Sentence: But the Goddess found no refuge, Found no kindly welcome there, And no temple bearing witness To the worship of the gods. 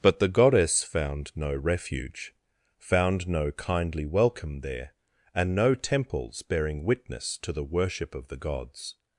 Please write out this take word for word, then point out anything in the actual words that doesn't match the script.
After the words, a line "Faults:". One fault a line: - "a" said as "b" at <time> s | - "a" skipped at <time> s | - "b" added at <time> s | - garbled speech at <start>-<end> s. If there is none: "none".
But the Goddess found no refuge, Found no kindly welcome there, And no temples bearing witness To the worship of the gods.
Faults:
- "temple" said as "temples" at 5.7 s